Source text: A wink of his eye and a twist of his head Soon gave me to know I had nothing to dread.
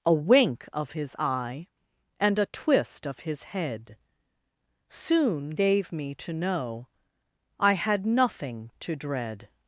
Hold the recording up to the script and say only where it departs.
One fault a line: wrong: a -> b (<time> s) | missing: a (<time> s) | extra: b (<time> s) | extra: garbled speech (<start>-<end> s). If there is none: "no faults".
no faults